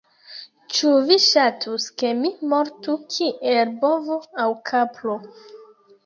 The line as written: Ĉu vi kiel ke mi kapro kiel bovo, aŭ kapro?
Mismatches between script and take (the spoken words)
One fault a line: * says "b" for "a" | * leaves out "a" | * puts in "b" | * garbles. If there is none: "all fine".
* says "ŝatus" for "kiel"
* says "mortu" for "kapro"